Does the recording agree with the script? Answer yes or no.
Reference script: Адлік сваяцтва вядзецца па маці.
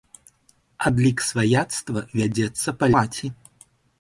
yes